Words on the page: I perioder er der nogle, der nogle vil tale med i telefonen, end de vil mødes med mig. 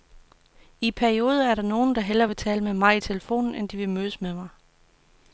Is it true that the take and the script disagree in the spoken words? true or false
true